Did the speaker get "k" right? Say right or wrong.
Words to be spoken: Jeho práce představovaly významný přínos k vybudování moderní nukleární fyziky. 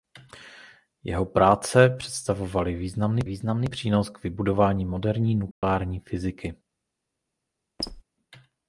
right